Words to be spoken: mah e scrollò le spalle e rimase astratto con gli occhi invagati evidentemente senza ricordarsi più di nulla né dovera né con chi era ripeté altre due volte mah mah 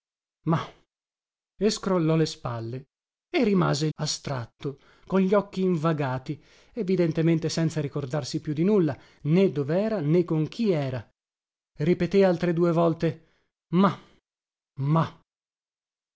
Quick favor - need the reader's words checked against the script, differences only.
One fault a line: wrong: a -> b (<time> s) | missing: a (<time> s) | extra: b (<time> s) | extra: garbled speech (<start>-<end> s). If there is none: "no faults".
no faults